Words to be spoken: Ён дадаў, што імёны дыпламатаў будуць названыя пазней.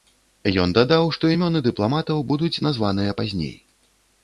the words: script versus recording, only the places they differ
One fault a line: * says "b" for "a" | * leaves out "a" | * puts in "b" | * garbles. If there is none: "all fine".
all fine